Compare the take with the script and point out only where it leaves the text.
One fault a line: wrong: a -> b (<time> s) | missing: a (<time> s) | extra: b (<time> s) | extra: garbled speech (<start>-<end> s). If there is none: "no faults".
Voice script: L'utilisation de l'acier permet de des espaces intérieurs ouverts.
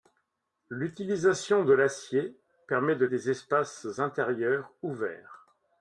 no faults